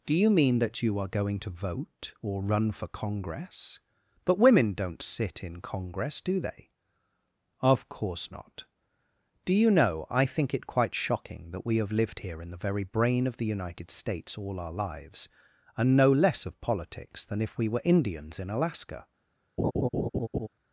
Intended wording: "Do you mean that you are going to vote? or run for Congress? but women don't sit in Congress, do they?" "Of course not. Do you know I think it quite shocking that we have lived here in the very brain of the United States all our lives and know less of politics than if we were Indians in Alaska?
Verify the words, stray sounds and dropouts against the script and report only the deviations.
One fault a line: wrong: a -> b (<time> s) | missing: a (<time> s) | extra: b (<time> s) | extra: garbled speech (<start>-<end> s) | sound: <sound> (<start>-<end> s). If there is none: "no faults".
sound: laugh (19.6-20.5 s)